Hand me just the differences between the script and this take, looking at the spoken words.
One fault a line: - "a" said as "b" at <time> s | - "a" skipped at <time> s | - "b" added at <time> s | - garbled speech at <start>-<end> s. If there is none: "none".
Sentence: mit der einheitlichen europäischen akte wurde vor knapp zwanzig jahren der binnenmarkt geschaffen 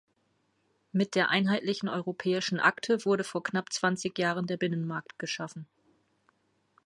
none